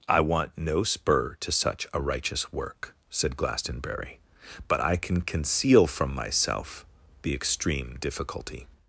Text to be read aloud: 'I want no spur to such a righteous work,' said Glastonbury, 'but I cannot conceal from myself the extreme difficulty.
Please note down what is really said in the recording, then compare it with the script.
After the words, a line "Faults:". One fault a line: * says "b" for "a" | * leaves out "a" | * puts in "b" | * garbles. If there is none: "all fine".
'I want no spur to such a righteous work,' said Glastonbury, 'but I can conceal from myself the extreme difficulty.
Faults:
* says "can" for "cannot"